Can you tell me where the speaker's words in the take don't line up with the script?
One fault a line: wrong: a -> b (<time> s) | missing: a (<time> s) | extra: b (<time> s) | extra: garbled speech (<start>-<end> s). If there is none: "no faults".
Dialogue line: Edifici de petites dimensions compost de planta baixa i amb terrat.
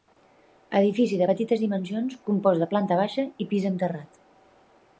extra: pis (3.5 s)